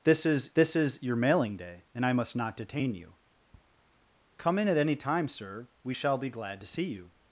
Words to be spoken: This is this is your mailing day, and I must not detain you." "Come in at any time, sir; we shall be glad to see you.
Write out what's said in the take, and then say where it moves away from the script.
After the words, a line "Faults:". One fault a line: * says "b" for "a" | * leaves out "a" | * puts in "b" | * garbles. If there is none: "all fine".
This is this is your mailing day, and I must not detain you." "Come in at any time, sir; we shall be glad to see you.
Faults:
all fine